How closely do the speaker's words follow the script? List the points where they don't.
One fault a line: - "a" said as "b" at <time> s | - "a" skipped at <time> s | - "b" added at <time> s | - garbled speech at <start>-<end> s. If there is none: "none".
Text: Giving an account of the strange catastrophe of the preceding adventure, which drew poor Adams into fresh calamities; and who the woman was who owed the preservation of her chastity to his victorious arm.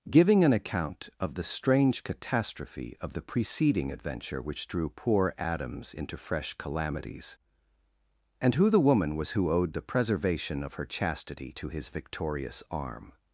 none